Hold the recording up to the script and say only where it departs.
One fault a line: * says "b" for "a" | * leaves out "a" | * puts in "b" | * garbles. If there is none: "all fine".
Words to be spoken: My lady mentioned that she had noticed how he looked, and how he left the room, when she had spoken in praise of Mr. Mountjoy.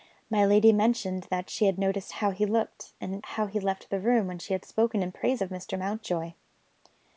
all fine